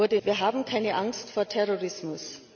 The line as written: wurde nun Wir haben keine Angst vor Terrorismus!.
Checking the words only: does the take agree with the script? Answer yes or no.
no